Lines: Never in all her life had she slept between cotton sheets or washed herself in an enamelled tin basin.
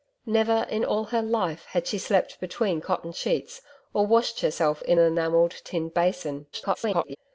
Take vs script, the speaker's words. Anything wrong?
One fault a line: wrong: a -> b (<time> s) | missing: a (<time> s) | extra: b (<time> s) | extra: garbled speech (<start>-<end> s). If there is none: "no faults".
missing: an (5.0 s)
extra: garbled speech (6.5-7.2 s)